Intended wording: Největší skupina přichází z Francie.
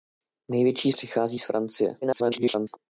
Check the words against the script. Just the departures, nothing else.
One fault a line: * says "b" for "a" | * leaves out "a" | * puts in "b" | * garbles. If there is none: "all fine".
* leaves out "skupina"
* garbles